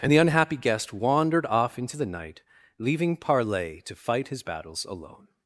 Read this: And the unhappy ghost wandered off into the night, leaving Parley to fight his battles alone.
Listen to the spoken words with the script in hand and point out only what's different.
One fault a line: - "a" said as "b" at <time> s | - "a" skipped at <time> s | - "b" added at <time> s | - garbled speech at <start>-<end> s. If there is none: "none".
- "ghost" said as "guest" at 0.6 s